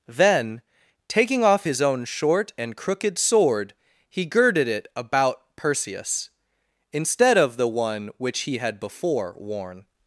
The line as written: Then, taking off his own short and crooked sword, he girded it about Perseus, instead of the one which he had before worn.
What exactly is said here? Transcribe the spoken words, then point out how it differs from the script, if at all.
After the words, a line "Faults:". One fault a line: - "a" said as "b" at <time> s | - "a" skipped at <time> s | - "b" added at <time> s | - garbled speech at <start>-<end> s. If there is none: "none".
Then, taking off his own short and crooked sword, he girded it about Perseus, instead of the one which he had before worn.
Faults:
none